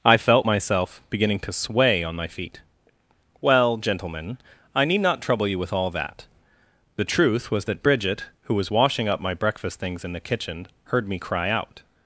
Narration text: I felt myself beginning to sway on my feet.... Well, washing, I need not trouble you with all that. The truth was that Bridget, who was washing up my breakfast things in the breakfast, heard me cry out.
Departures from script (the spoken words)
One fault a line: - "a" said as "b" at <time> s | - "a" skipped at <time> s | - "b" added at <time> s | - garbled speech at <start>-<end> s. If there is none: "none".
- "washing" said as "gentlemen" at 3.8 s
- "breakfast" said as "kitchen" at 10.2 s